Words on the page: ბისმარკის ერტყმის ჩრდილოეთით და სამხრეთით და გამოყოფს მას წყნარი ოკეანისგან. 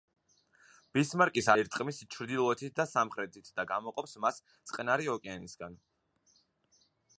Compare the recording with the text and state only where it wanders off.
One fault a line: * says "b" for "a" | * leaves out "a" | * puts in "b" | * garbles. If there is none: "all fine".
all fine